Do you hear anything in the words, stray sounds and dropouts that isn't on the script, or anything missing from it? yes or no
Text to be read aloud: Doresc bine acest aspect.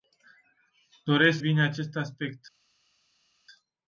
no